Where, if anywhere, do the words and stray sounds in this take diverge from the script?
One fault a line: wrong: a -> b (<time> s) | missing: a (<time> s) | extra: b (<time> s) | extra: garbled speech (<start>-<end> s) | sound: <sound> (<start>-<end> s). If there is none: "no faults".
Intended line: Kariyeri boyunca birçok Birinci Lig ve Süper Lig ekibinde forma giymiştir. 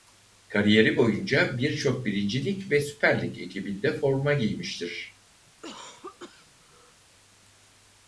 sound: cough (5.5-7.0 s)